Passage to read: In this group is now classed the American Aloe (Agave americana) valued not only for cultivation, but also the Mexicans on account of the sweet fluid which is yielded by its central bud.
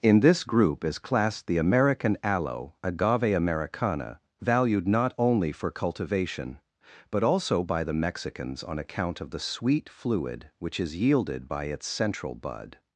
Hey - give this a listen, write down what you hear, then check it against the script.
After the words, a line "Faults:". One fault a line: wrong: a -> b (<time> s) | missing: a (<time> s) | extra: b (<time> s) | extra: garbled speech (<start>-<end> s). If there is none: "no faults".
In this group is classed the American Aloe (Agave americana) valued not only for cultivation, but also by the Mexicans on account of the sweet fluid which is yielded by its central bud.
Faults:
missing: now (1.0 s)
extra: by (7.6 s)